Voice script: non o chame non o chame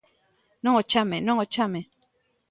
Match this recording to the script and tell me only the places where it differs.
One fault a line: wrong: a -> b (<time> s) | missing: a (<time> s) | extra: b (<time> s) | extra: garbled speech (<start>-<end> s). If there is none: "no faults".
no faults